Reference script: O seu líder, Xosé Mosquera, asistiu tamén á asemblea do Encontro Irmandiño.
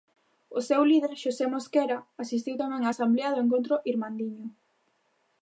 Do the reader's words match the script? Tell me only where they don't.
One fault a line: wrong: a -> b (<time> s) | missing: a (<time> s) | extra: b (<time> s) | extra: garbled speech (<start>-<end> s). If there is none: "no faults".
no faults